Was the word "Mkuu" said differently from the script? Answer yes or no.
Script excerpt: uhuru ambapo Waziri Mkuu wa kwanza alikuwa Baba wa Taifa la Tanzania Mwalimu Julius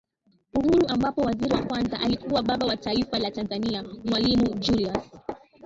yes